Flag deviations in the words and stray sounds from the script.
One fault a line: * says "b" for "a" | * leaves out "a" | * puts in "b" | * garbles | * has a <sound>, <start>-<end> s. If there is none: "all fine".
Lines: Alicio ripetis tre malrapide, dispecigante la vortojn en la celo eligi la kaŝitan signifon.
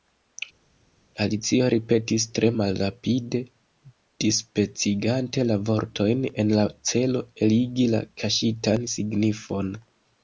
all fine